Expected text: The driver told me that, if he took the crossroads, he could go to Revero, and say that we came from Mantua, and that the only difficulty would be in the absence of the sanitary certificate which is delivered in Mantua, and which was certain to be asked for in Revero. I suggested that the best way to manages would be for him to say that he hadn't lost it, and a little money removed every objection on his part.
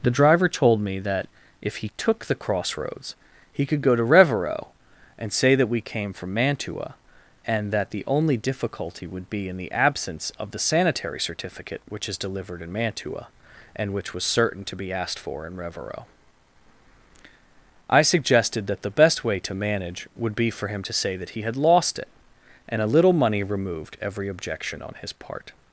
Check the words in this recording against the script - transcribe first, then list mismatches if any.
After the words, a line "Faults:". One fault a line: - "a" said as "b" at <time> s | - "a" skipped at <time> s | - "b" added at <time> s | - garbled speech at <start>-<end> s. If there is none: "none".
The driver told me that, if he took the crossroads, he could go to Revero, and say that we came from Mantua, and that the only difficulty would be in the absence of the sanitary certificate which is delivered in Mantua, and which was certain to be asked for in Revero. I suggested that the best way to manage would be for him to say that he had lost it, and a little money removed every objection on his part.
Faults:
- "manages" said as "manage" at 19.5 s
- "hadn't" said as "had" at 21.4 s